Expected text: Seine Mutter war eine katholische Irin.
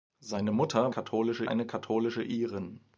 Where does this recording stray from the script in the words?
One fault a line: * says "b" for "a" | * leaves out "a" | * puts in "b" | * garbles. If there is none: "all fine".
* says "katholische" for "war"